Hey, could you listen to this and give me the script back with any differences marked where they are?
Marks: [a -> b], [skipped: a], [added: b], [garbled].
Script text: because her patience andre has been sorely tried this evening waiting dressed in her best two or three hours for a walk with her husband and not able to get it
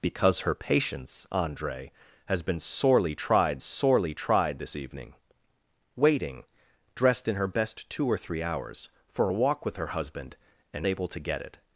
because her patience andre has been sorely tried [added: sorely tried] this evening waiting dressed in her best two or three hours for a walk with her husband and [skipped: not] able to get it